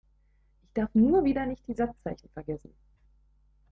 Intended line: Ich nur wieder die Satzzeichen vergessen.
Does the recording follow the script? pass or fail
fail